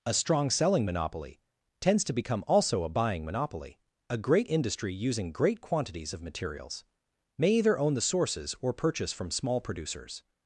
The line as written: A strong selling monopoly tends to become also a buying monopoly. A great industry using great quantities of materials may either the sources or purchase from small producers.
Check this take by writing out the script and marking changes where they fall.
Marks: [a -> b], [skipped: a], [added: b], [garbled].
A strong selling monopoly tends to become also a buying monopoly. A great industry using great quantities of materials may either [added: own] the sources or purchase from small producers.